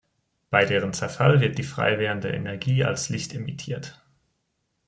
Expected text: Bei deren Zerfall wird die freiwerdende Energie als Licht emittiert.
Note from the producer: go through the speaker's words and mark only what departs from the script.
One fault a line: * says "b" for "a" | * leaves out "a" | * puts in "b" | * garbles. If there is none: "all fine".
all fine